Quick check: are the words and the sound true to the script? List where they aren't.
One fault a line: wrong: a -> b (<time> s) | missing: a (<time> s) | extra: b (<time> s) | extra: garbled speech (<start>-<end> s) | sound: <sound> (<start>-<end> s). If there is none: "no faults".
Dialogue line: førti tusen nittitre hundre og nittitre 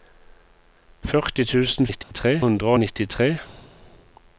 sound: dropout (2.0-2.1 s)